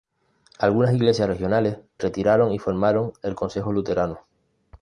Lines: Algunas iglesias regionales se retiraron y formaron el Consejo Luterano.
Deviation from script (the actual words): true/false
true